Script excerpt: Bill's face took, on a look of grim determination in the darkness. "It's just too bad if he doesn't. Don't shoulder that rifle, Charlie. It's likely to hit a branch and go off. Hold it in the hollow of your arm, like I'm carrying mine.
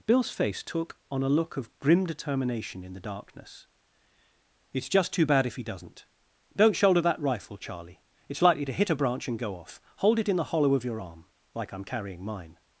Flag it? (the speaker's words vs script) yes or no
no